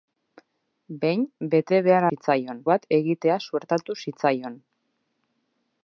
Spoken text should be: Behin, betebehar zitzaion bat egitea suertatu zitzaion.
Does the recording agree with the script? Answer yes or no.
yes